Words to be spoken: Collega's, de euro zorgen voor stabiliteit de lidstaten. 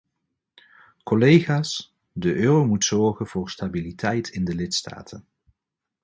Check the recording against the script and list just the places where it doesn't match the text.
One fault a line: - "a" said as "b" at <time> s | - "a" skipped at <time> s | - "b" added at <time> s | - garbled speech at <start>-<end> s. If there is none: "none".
- "moet" added at 2.6 s
- "in" added at 4.3 s